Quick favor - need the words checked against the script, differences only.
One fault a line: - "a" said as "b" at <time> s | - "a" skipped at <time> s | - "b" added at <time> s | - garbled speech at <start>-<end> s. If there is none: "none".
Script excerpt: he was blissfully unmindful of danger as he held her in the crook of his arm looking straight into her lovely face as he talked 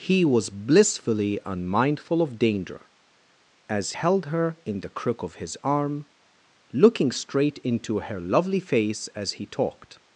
- "he" skipped at 3.9 s